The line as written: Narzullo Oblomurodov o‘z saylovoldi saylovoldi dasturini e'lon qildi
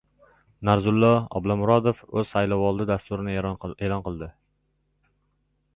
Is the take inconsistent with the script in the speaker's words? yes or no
yes